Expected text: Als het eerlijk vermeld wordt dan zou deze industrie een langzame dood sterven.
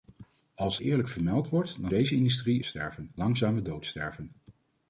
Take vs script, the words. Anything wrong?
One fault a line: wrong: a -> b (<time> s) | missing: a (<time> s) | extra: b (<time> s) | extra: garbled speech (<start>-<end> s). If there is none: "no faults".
missing: het (0.8 s)
missing: zou (1.9 s)
wrong: een -> sterven (2.6 s)